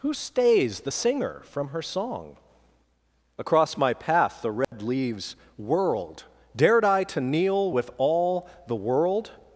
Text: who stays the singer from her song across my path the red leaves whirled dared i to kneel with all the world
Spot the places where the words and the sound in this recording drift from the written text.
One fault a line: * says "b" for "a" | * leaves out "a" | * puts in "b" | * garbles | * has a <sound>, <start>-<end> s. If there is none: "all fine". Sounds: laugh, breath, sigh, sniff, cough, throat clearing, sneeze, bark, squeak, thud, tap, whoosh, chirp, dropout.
* has a dropout, 4.6-4.7 s